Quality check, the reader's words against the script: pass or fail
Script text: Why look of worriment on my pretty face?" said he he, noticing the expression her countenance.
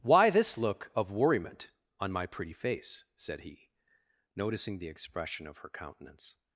fail